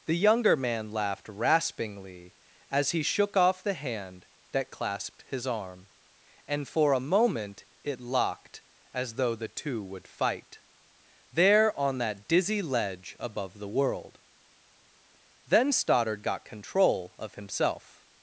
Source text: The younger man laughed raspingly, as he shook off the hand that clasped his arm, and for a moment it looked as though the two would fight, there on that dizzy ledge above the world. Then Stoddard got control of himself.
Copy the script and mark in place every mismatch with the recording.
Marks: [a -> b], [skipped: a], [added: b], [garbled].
The younger man laughed raspingly, as he shook off the hand that clasped his arm, and for a moment it [looked -> locked] as though the two would fight, there on that dizzy ledge above the world. Then Stoddard got control of himself.